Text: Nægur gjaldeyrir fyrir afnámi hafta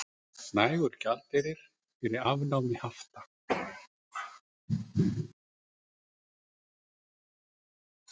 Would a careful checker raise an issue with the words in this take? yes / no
no